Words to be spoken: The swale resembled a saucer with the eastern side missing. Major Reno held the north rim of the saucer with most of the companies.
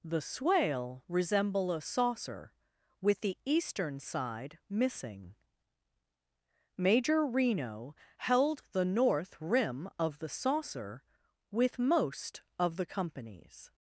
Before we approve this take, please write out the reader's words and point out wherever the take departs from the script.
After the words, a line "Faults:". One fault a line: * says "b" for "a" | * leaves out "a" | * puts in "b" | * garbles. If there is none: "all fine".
The swale resemble a saucer with the eastern side missing. Major Reno held the north rim of the saucer with most of the companies.
Faults:
* says "resemble" for "resembled"